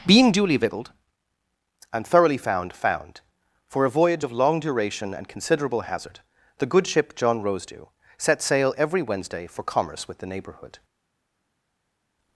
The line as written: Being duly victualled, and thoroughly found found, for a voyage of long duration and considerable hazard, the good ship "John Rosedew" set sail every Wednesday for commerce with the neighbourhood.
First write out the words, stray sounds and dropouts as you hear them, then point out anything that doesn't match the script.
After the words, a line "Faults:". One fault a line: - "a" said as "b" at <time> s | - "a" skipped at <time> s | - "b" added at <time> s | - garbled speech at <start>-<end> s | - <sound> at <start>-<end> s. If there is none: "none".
Being duly victualled, and thoroughly found found, for a voyage of long duration and considerable hazard, the good ship "John Rosedew" set sail every Wednesday for commerce with the neighbourhood.
Faults:
none